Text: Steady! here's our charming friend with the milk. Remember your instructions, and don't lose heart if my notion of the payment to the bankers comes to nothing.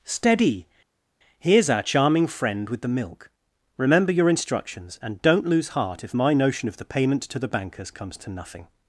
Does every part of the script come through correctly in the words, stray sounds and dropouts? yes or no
yes